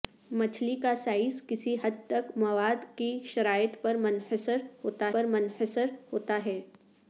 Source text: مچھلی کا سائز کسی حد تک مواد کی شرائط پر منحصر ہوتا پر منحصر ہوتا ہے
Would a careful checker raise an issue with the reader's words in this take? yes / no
no